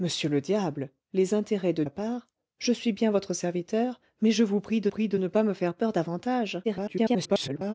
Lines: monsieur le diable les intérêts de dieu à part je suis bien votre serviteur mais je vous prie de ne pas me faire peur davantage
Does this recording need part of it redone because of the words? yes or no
yes